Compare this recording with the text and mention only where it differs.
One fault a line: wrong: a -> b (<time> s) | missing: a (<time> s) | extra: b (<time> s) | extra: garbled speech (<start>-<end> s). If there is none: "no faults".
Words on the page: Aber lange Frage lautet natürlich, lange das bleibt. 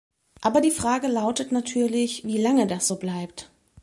wrong: lange -> die (0.6 s)
extra: wie (2.2 s)
extra: so (2.8 s)